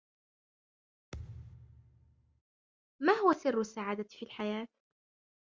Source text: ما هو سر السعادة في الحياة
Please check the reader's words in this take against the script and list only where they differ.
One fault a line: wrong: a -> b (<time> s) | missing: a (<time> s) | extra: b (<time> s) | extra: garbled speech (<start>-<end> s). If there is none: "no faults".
no faults